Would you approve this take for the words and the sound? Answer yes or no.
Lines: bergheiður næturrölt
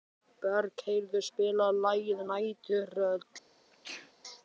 no